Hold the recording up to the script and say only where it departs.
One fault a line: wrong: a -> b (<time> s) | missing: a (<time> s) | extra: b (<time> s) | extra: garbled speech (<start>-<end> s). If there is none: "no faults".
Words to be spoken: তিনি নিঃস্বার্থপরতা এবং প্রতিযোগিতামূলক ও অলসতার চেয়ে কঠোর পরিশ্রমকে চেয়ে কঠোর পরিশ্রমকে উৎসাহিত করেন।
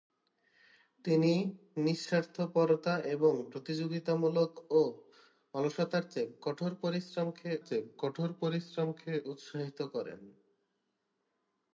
no faults